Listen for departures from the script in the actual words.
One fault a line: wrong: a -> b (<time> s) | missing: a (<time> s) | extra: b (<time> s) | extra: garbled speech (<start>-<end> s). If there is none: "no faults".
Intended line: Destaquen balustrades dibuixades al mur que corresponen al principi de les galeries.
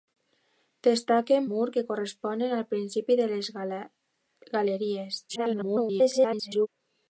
missing: balustrades dibuixades al (1.5 s)
extra: garbled speech (5.3-6.7 s)